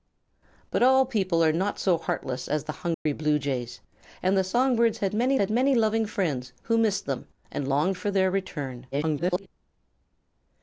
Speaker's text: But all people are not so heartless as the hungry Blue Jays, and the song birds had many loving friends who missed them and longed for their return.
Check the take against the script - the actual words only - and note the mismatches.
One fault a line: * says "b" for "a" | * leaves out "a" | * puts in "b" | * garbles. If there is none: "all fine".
* puts in "had many"
* garbles